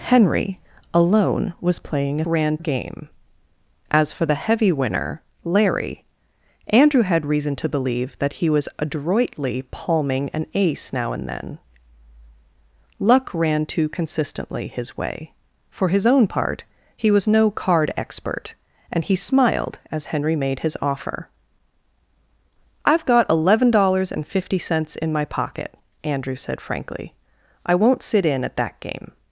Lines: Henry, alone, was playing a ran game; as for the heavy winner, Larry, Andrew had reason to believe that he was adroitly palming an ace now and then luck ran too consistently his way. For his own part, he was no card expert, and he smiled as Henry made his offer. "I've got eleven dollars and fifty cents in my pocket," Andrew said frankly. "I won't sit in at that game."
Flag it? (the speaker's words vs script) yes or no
no